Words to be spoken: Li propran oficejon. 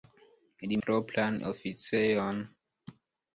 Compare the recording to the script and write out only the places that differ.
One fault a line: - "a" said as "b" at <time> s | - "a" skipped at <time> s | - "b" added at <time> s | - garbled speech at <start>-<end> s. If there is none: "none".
none